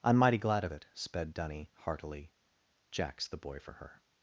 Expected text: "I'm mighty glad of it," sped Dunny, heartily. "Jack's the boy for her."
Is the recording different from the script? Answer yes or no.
no